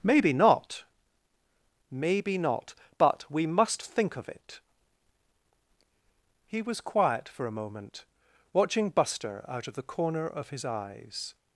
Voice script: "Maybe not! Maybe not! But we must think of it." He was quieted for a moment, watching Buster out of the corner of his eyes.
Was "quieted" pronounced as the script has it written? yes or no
no